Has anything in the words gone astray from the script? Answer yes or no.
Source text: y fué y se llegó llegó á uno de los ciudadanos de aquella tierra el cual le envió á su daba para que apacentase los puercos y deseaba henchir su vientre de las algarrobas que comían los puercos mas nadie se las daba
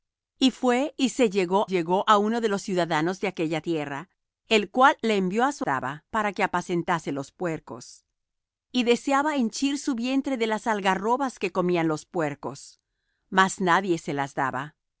no